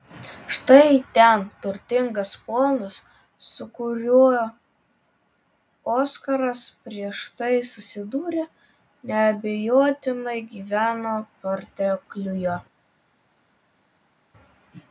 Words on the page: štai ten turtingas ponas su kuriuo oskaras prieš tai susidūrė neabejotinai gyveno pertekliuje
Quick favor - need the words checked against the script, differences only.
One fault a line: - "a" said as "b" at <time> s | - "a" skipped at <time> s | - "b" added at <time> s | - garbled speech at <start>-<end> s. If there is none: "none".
none